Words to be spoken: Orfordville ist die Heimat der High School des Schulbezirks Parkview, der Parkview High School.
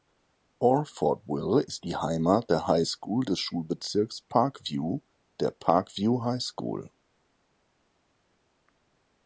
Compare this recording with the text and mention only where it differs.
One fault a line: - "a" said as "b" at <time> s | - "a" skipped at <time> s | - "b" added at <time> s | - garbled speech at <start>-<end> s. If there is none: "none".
none